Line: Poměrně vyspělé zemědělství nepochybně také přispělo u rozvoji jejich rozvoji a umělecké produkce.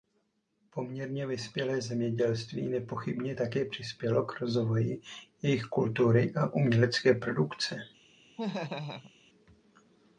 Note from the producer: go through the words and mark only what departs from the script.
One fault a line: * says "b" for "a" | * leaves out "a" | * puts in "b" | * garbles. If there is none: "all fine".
* says "k" for "u"
* says "kultury" for "rozvoji"